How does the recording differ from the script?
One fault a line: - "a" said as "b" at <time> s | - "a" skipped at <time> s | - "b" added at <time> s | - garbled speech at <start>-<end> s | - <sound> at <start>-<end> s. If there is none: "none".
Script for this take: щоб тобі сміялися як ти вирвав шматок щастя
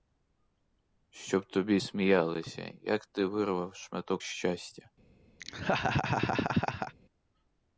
- laugh at 5.4-6.9 s